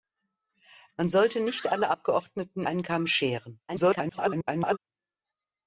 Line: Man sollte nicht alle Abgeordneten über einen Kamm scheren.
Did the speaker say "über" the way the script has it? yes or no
no